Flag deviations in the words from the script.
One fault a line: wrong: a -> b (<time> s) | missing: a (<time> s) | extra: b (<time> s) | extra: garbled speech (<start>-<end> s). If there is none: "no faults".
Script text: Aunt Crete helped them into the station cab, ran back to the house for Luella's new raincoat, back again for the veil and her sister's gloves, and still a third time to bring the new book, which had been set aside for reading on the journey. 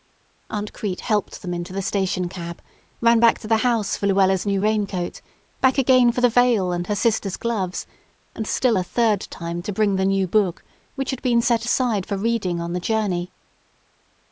no faults